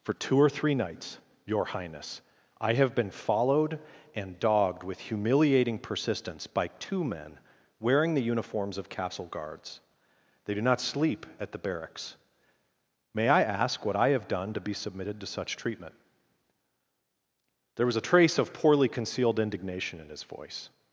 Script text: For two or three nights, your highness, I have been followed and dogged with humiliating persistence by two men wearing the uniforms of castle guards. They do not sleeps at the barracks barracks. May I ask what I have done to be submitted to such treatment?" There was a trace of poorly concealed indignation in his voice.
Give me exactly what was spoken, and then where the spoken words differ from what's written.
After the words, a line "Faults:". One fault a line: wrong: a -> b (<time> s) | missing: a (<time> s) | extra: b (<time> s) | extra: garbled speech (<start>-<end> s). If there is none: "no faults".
For two or three nights, your highness, I have been followed and dogged with humiliating persistence by two men wearing the uniforms of castle guards. They do not sleep at the barracks. May I ask what I have done to be submitted to such treatment?" There was a trace of poorly concealed indignation in his voice.
Faults:
wrong: sleeps -> sleep (10.8 s)
missing: barracks (12.2 s)